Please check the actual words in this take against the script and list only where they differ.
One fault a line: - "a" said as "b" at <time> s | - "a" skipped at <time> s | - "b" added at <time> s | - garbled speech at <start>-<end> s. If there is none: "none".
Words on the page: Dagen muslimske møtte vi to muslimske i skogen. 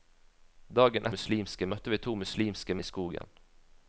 none